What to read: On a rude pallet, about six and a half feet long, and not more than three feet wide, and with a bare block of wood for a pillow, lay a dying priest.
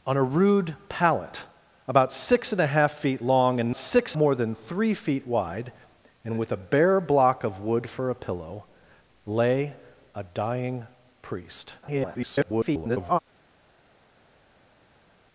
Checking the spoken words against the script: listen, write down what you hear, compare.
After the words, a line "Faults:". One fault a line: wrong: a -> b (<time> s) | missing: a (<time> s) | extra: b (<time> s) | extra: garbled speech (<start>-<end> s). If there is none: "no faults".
On a rude pallet, about six and a half feet long, and six more than three feet wide, and with a bare block of wood for a pillow, lay a dying priest. [garbled]
Faults:
wrong: not -> six (3.7 s)
extra: garbled speech (11.8-13.2 s)